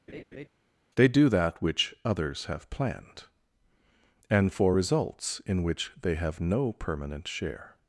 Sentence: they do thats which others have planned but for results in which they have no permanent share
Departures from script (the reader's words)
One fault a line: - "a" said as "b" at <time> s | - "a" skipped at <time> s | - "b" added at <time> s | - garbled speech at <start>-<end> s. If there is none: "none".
- "thats" said as "that" at 1.3 s
- "but" said as "and" at 4.3 s